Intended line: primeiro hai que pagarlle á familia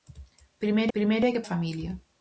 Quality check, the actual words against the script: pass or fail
fail